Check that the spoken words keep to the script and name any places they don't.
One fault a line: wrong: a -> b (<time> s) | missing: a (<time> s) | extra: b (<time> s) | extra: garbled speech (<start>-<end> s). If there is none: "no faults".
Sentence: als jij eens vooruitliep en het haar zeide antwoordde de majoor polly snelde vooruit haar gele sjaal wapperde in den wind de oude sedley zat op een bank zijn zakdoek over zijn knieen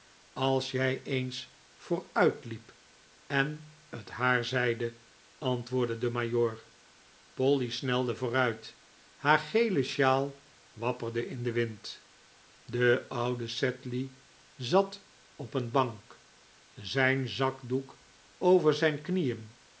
no faults